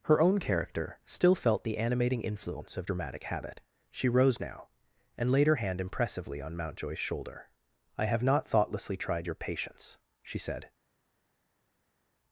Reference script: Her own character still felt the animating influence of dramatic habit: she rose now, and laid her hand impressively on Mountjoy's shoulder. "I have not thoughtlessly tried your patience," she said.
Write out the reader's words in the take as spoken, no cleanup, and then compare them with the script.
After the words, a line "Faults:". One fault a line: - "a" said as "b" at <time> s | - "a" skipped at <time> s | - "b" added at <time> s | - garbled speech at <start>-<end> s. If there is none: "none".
Her own character still felt the animating influence of dramatic habit: she rose now, and laid her hand impressively on Mountjoy's shoulder. "I have not thoughtlessly tried your patience," she said.
Faults:
none